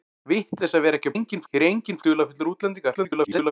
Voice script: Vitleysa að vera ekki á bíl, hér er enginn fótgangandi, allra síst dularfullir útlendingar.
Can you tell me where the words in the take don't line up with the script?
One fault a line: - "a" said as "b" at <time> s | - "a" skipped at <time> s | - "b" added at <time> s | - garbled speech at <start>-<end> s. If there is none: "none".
- "bíl" said as "enginn" at 1.1 s
- "fótgangandi allra síst" skipped at 2.0 s
- garbled speech at 2.9-3.5 s